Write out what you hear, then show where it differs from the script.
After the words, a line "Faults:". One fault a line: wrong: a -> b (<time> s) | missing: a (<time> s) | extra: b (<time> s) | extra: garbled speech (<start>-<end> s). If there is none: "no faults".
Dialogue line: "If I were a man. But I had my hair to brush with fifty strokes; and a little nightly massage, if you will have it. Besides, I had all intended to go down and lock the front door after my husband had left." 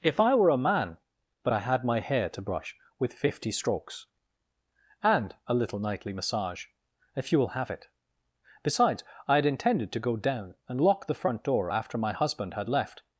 "If I were a man. But I had my hair to brush with fifty strokes; and a little nightly massage, if you will have it. Besides, I had intended to go down and lock the front door after my husband had left."
Faults:
missing: all (9.4 s)